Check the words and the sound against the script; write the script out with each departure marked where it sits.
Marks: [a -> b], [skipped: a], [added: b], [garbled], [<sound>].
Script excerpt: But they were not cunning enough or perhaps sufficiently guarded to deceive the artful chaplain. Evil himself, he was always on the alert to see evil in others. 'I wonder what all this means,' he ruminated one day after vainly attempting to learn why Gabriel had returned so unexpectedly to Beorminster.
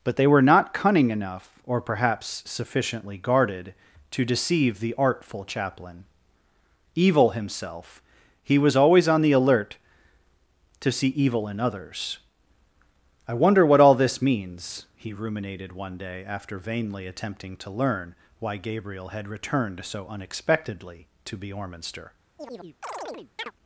But they were not cunning enough or perhaps sufficiently guarded to deceive the artful chaplain. Evil himself, he was always on the alert to see evil in others. 'I wonder what all this means,' he ruminated one day after vainly attempting to learn why Gabriel had returned so unexpectedly to Beorminster. [chirp]